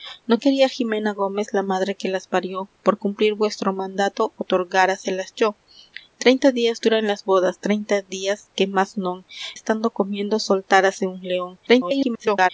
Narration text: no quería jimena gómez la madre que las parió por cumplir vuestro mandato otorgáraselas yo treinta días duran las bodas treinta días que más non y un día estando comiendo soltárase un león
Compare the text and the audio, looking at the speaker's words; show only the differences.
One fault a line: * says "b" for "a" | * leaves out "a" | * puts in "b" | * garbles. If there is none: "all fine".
* leaves out "y un día"
* garbles